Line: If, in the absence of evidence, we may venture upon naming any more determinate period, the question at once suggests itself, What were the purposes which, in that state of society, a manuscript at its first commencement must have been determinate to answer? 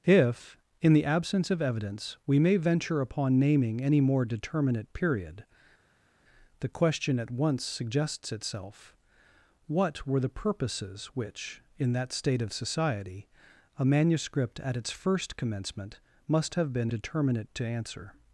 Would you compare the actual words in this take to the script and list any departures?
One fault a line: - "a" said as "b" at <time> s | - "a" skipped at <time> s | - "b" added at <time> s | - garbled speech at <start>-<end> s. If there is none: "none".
none